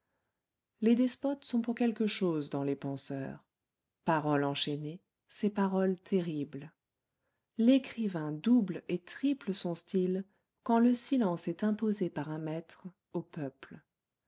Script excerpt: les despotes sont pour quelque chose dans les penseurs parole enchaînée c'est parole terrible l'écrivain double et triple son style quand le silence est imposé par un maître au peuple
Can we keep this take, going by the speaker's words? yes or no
yes